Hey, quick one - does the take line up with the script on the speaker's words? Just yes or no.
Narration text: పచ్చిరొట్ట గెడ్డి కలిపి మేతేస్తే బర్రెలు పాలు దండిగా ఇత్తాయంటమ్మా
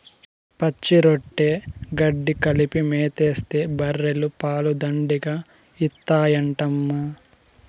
yes